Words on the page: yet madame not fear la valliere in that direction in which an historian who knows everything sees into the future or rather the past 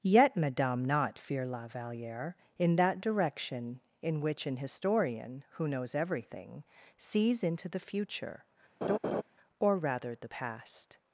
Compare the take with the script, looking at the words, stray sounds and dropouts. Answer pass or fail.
fail